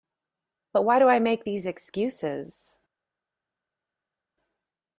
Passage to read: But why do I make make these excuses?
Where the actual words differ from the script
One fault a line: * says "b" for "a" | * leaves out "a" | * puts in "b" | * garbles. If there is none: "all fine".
* leaves out "make"